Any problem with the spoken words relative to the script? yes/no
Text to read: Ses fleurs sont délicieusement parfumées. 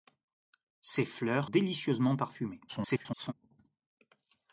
yes